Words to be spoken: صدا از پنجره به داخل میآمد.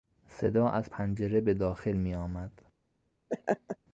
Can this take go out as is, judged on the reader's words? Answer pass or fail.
pass